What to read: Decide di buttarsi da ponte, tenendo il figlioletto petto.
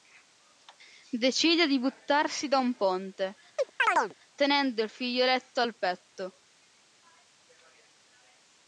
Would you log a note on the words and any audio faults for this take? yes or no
yes